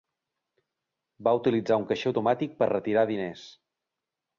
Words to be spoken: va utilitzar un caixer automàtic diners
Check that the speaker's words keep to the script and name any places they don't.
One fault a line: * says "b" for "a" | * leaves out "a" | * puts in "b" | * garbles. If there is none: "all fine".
* puts in "per retirar"